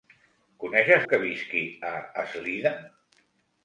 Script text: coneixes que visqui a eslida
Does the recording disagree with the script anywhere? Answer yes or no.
no